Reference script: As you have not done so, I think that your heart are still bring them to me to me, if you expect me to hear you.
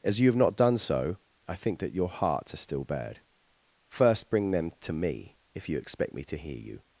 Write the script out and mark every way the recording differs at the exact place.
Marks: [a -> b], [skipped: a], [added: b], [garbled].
As you have not done so, I think that your [heart -> hearts] are still [added: bad First] bring them to me [skipped: to me,] if you expect me to hear you.